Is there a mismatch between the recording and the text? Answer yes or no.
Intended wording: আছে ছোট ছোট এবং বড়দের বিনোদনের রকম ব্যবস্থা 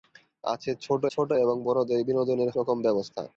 no